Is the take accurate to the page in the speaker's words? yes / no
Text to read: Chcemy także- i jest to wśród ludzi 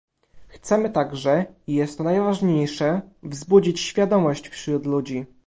no